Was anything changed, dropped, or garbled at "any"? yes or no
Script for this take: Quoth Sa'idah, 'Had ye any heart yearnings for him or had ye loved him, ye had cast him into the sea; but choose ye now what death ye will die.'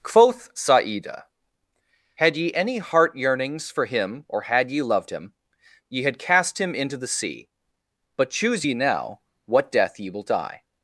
no